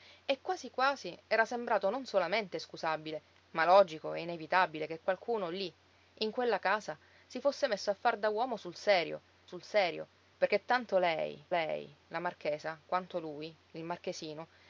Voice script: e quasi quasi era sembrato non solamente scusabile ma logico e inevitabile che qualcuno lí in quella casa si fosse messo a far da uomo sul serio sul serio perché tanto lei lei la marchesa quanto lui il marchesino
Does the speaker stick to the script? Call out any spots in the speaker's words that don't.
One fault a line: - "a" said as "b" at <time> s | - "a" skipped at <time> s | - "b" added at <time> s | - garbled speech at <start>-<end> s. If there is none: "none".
none